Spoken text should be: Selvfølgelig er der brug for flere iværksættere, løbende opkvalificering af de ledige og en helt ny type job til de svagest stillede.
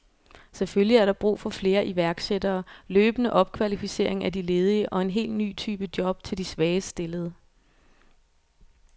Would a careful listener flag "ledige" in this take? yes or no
no